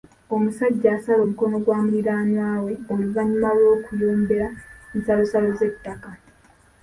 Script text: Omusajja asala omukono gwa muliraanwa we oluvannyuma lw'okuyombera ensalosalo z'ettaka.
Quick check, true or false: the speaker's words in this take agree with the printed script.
true